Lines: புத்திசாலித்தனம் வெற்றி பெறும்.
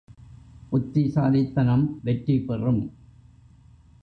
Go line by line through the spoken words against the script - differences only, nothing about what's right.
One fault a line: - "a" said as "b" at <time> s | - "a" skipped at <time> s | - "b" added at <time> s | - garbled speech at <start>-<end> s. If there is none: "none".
none